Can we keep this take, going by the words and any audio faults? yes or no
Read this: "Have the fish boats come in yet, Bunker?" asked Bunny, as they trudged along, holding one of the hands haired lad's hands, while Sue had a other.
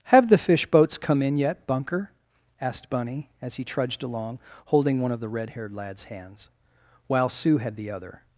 no